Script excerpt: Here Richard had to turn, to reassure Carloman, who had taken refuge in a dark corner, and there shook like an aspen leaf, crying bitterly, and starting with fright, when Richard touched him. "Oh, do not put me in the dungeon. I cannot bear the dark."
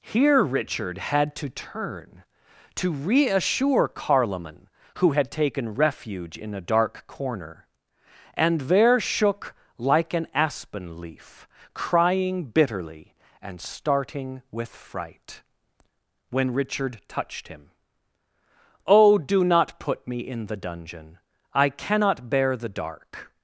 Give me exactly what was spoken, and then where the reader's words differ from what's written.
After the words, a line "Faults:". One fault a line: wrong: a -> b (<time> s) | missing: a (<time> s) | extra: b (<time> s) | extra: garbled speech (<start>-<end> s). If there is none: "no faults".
Here Richard had to turn, to reassure Carloman, who had taken refuge in a dark corner, and there shook like an aspen leaf, crying bitterly, and starting with fright, when Richard touched him. "Oh, do not put me in the dungeon. I cannot bear the dark."
Faults:
no faults